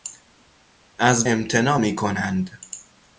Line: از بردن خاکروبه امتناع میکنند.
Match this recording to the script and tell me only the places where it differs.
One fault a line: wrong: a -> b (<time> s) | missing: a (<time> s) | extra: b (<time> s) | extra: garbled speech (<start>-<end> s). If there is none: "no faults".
missing: بردن خاکروبه (1.3 s)